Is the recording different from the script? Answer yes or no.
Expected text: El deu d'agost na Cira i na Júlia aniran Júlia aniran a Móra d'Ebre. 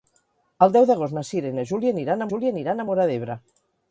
no